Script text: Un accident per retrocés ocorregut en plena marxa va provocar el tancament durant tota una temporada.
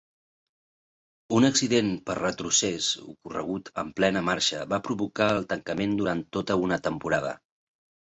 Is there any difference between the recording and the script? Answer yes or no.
no